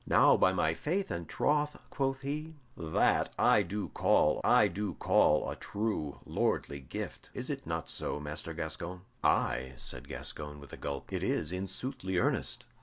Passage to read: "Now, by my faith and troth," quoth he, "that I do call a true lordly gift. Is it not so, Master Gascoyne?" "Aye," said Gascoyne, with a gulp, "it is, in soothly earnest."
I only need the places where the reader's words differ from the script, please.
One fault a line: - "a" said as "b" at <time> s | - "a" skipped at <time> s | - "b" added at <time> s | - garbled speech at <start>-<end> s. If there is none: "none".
- "I do call" added at 4.4 s